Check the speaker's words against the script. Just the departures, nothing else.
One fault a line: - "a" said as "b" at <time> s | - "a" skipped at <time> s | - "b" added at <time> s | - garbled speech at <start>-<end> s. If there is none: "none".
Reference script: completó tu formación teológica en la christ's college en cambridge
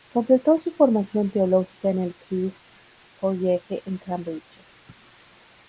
- "tu" said as "su" at 0.6 s
- "la" said as "el" at 2.0 s